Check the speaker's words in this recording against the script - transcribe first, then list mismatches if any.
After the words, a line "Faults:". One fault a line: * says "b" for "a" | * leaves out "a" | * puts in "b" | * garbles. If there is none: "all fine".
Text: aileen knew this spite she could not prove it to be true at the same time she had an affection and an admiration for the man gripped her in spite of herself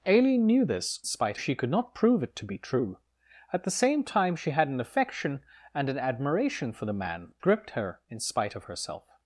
aileen knew this spite she could not prove it to be true at the same time she had an affection and an admiration for the man gripped her in spite of herself
Faults:
all fine